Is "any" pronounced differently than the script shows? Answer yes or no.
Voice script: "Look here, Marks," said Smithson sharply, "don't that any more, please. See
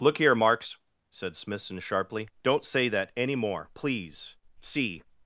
no